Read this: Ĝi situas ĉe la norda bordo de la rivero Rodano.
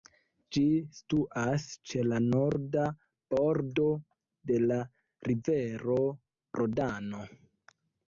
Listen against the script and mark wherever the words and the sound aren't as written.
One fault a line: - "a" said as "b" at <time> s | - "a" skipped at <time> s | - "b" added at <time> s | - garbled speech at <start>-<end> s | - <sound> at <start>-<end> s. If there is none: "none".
none